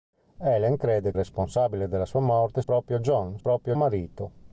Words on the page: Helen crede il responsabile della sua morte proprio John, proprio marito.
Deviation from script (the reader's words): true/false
false